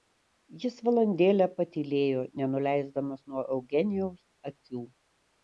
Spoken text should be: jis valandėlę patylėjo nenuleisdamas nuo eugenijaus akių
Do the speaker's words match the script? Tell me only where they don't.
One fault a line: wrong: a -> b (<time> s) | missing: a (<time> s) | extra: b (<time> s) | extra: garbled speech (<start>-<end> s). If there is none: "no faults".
no faults